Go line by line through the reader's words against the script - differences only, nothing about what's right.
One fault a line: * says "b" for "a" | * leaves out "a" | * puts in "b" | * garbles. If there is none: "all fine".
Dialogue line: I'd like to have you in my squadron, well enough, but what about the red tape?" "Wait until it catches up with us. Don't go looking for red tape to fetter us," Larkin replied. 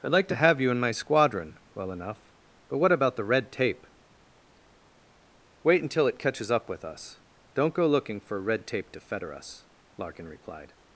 all fine